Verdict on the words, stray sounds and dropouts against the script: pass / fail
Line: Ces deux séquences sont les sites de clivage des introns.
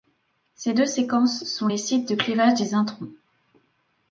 pass